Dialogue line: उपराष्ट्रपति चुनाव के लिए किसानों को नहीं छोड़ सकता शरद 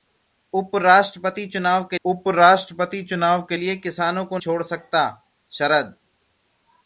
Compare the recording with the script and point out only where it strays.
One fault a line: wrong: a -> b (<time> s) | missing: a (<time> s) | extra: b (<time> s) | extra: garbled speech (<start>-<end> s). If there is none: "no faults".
extra: उपराष्ट्रपति चुनाव के (2.0 s)
missing: नहीं (4.4 s)